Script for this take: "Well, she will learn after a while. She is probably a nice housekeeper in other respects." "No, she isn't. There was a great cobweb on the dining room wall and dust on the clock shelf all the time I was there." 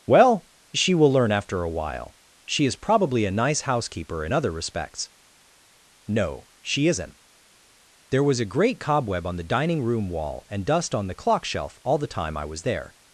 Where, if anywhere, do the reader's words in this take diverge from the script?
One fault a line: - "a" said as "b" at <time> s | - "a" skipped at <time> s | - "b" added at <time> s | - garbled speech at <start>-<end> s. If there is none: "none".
none